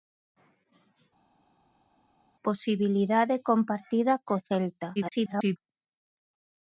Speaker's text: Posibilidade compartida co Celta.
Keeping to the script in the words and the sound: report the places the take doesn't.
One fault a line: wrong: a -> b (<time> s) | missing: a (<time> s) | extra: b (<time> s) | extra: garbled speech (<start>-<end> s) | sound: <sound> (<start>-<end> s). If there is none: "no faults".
extra: garbled speech (5.0-5.6 s)